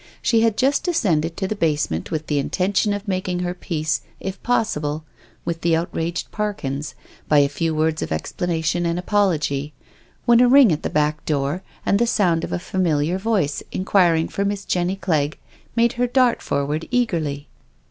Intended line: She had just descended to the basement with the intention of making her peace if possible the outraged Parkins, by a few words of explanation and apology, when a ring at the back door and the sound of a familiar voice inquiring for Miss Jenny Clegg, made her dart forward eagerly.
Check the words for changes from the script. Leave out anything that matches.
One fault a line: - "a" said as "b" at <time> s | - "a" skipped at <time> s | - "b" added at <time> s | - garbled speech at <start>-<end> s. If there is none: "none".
- "with" added at 5.4 s